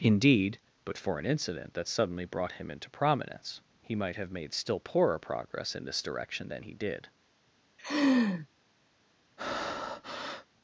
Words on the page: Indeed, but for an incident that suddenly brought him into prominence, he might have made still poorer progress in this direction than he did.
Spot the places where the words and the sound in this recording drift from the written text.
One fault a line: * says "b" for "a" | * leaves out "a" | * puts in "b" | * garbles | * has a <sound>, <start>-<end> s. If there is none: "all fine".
* has a laugh, 7.8-8.5 s
* has a breath, 9.4-10.5 s